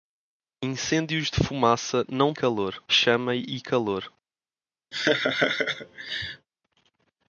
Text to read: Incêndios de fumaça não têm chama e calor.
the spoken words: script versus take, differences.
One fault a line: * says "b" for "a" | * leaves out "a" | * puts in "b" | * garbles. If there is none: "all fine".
* says "calor" for "têm"